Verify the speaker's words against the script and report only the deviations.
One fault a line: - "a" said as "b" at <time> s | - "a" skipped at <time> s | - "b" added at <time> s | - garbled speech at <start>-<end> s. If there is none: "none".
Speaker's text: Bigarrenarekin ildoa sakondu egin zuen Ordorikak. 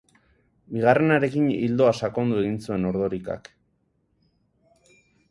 none